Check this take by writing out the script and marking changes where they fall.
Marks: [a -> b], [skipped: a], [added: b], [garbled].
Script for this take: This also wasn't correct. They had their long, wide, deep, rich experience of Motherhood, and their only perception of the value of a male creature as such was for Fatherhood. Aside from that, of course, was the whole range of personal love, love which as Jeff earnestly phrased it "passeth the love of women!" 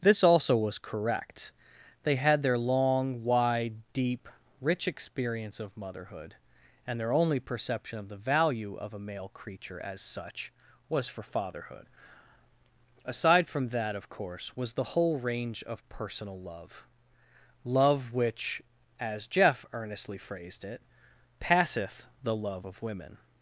This also [wasn't -> was] correct. They had their long, wide, deep, rich experience of Motherhood, and their only perception of the value of a male creature as such was for Fatherhood. Aside from that, of course, was the whole range of personal love, love which as Jeff earnestly phrased it "passeth the love of women!"